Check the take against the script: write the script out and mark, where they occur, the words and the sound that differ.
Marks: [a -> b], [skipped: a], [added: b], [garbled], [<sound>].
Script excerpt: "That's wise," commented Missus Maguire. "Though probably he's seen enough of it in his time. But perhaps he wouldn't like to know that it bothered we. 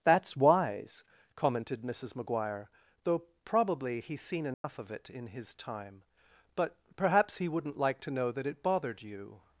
"That's wise," commented Missus Maguire. "Though probably he's seen enough [dropout] of it in his time. But perhaps he wouldn't like to know that it bothered [we. -> you]